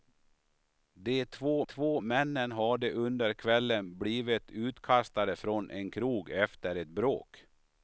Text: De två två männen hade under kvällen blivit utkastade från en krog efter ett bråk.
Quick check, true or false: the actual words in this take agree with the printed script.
true